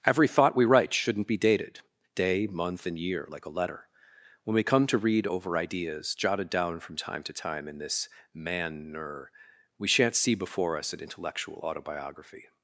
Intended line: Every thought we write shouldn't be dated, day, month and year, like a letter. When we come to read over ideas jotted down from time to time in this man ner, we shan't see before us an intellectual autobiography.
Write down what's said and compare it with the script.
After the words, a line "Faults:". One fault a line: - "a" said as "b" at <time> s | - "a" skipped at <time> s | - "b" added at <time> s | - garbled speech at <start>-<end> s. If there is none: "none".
Every thought we write shouldn't be dated, day, month and year, like a letter. When we come to read over ideas jotted down from time to time in this man ner, we shan't see before us an intellectual autobiography.
Faults:
none